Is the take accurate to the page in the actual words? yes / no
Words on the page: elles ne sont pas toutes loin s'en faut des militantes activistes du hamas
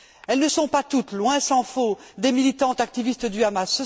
yes